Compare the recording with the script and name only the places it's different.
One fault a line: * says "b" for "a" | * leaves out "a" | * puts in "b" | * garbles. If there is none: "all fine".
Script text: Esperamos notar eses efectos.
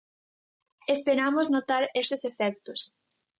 all fine